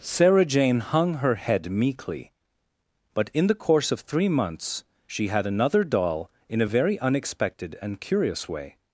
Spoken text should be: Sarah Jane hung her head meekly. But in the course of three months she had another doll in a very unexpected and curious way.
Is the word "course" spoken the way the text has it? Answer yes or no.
yes